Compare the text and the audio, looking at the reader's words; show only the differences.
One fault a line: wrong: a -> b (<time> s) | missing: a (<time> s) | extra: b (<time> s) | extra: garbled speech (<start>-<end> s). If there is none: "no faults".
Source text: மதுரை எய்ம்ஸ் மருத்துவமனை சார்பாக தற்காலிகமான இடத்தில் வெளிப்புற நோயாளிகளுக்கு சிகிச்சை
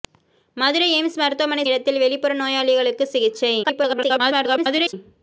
missing: சார்பாக தற்காலிகமான (1.6 s)
extra: garbled speech (3.6-4.9 s)